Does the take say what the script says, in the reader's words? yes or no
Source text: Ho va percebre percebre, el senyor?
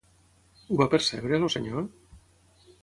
no